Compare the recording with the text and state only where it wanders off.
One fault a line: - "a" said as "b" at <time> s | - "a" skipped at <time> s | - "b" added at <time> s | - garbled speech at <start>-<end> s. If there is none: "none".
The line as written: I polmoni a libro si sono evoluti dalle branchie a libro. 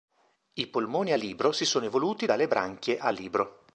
none